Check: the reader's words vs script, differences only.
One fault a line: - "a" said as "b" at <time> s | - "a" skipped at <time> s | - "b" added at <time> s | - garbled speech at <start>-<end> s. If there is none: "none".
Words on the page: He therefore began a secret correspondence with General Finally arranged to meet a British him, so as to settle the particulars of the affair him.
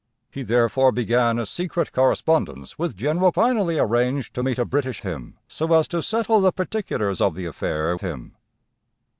none